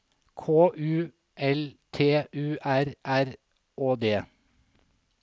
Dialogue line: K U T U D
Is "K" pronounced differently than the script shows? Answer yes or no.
no